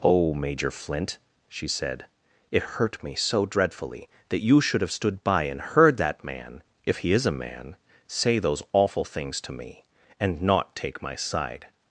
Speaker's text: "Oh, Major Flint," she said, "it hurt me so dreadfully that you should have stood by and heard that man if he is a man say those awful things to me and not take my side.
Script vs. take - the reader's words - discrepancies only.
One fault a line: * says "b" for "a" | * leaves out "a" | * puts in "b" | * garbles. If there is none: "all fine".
all fine